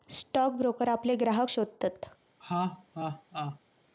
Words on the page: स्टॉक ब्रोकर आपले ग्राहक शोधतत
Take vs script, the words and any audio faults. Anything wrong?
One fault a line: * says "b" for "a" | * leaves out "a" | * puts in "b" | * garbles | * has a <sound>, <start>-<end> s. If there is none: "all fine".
* has a laugh, 2.4-3.6 s